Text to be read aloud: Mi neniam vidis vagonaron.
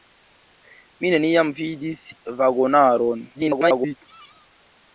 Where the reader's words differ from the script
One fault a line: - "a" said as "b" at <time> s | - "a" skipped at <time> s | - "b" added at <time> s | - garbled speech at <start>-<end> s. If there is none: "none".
- garbled speech at 3.3-4.0 s